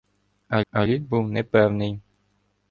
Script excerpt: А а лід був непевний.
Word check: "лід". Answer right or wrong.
right